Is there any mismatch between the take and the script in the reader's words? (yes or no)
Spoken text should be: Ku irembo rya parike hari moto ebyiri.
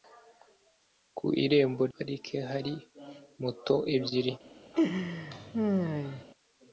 yes